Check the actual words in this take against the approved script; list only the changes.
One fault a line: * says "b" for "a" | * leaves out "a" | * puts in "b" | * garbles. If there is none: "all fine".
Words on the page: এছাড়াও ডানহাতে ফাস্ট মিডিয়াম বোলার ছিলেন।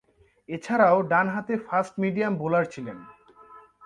all fine